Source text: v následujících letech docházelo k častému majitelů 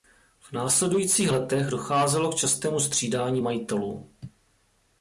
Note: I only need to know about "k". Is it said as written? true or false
true